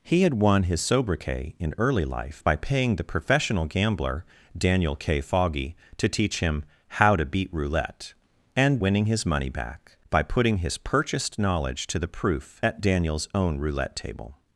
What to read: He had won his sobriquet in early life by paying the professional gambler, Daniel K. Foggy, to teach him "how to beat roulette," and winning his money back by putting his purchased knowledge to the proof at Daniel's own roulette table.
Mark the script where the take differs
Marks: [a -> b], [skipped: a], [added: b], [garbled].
He had won his sobriquet in early life by paying the professional gambler, Daniel K. Foggy, to teach him "how to beat roulette," and winning his money back by putting his purchased knowledge to the proof at Daniel's own roulette table.